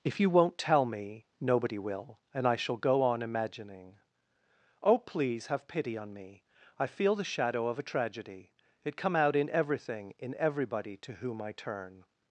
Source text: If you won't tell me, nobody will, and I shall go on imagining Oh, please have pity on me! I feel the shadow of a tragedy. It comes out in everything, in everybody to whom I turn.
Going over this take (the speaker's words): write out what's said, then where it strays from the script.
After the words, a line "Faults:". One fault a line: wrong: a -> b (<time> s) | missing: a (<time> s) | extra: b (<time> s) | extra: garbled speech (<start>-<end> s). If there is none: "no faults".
If you won't tell me, nobody will, and I shall go on imagining Oh, please have pity on me! I feel the shadow of a tragedy. It come out in everything, in everybody to whom I turn.
Faults:
wrong: comes -> come (9.0 s)